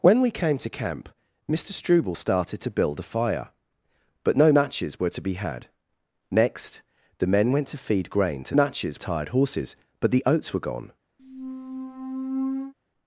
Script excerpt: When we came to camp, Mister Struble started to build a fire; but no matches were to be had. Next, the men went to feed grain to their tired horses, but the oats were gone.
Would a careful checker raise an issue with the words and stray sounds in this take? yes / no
yes